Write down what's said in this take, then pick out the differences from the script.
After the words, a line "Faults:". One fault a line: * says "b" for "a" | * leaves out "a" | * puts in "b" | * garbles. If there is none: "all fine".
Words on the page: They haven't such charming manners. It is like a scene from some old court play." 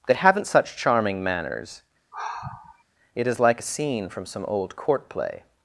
They haven't such charming manners. It is like a scene from some old court play."
Faults:
all fine